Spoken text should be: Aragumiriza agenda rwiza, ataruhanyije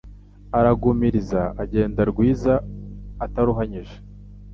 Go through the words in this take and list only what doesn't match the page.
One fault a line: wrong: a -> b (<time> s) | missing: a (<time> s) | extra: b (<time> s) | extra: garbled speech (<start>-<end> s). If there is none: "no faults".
no faults